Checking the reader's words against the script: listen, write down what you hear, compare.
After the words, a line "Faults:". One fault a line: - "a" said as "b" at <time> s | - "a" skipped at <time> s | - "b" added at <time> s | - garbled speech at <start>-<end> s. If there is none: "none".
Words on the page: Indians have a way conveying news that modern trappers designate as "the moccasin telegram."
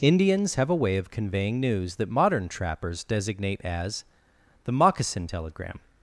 Indians have a way of conveying news that modern trappers designate as "the moccasin telegram."
Faults:
- "of" added at 1.0 s